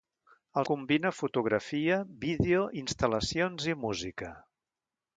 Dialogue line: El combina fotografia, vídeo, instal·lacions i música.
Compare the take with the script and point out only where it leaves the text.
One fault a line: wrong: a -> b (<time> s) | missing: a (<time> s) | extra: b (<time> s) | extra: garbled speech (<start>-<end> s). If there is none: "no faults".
no faults